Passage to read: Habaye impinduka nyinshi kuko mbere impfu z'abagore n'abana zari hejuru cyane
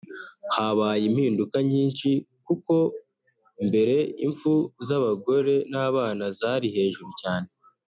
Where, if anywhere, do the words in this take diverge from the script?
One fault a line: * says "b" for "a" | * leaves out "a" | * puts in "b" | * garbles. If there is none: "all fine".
all fine